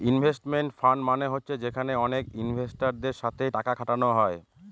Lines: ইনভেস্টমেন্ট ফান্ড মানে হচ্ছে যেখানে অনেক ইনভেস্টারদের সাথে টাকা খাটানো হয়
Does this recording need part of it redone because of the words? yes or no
no